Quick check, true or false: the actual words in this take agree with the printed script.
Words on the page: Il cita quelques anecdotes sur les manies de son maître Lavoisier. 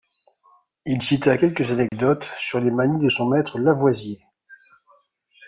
true